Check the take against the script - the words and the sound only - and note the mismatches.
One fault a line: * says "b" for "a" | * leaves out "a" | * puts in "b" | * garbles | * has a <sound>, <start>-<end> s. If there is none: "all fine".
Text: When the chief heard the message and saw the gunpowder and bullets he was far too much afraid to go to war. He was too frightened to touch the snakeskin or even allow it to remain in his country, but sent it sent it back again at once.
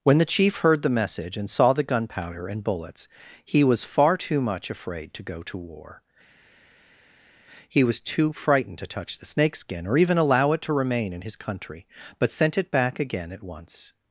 * leaves out "sent it"